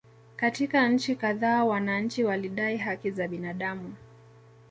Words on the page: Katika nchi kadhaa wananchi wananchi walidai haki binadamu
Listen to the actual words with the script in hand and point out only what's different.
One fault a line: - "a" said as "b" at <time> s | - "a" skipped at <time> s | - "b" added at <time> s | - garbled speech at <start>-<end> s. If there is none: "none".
- "wananchi" skipped at 2.2 s
- "za" added at 3.1 s